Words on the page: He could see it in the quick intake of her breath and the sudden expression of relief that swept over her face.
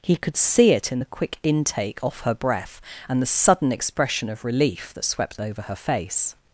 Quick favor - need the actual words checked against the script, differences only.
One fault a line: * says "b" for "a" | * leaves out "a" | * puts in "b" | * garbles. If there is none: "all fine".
* says "off" for "of"